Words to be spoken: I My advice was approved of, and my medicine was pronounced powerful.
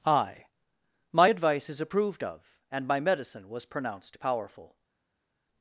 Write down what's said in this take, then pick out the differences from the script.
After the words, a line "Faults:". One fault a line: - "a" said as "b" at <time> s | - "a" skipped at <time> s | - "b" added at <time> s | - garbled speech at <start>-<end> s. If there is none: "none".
I My advice is approved of, and my medicine was pronounced powerful.
Faults:
- "was" said as "is" at 1.7 s